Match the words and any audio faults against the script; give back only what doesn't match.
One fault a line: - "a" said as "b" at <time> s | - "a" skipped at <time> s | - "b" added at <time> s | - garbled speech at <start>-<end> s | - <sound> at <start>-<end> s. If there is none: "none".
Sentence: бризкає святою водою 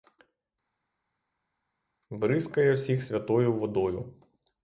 - "всіх" added at 2.7 s